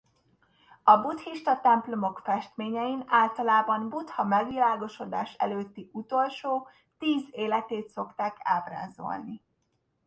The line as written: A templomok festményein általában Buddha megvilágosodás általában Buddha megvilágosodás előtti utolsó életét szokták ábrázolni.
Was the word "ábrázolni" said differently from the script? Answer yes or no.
no